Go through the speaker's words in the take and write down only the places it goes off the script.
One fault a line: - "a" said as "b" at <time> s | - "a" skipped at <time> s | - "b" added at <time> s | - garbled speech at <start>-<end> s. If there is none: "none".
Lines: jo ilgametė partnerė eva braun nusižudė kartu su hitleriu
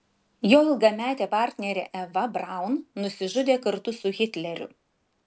none